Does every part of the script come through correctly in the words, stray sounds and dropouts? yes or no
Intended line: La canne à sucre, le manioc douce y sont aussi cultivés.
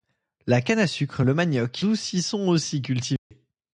no